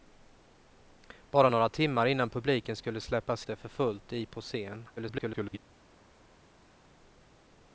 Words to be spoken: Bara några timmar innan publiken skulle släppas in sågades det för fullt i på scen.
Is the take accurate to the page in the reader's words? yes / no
no